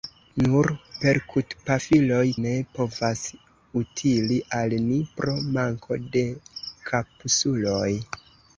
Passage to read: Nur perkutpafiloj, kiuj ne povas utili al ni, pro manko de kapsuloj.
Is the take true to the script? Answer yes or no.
no